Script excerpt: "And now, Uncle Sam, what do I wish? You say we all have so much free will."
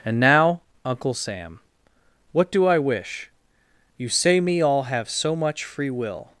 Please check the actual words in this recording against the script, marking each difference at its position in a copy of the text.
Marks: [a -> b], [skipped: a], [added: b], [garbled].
"And now, Uncle Sam, what do I wish? You say [we -> me] all have so much free will."